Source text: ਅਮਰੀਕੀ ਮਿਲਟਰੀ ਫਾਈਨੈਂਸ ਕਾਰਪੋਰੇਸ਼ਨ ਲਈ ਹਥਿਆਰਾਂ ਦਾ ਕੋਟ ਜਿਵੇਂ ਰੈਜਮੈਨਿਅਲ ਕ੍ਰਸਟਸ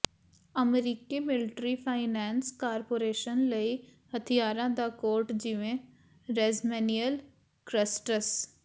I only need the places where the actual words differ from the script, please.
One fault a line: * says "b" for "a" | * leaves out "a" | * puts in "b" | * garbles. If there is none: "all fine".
all fine